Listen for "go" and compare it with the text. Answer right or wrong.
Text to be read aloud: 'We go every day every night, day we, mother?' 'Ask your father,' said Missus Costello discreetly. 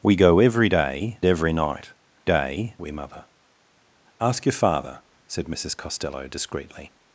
right